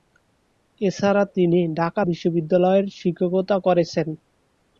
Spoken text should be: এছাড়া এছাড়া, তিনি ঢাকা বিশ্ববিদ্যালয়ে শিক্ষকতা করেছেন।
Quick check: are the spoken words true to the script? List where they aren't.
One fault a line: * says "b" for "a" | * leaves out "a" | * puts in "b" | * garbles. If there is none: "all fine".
* leaves out "এছাড়া"